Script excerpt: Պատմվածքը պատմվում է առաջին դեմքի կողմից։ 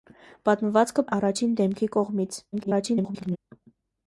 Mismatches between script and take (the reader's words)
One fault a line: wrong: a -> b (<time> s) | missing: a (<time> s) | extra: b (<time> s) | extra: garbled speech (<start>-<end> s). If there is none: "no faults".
missing: պատմվում (1.1 s)
extra: garbled speech (2.5-3.4 s)